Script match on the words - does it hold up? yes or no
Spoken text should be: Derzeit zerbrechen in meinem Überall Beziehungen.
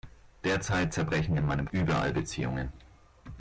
yes